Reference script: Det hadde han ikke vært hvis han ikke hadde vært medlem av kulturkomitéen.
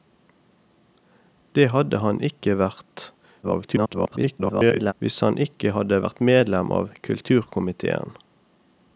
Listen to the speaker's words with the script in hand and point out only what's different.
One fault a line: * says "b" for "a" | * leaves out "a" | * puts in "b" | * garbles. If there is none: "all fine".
* garbles